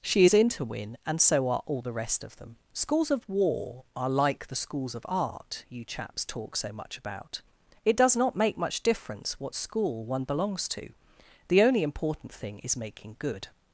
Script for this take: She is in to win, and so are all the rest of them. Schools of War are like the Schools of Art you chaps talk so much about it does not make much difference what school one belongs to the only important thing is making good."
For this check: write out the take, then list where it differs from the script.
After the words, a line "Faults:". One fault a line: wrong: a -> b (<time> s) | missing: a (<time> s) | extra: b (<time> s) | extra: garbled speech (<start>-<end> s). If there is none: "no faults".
She is in to win, and so are all the rest of them. Schools of War are like the Schools of Art you chaps talk so much about it does not make much difference what school one belongs to the only important thing is making good."
Faults:
no faults